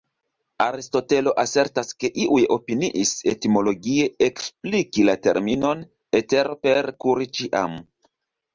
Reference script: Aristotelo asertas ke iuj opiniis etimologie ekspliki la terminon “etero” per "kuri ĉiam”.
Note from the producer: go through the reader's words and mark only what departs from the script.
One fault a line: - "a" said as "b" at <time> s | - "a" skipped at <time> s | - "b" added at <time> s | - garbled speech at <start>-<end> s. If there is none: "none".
none